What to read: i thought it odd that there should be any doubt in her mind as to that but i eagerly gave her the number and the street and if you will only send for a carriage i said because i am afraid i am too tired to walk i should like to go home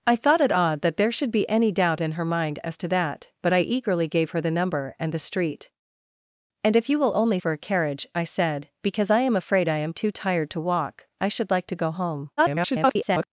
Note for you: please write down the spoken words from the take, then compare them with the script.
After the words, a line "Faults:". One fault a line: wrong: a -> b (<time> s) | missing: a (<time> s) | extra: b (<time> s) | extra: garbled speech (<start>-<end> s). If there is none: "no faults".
i thought it odd that there should be any doubt in her mind as to that but i eagerly gave her the number and the street and if you will only for a carriage i said because i am afraid i am too tired to walk i should like to go home [garbled]
Faults:
missing: send (7.4 s)
extra: garbled speech (12.4-13.3 s)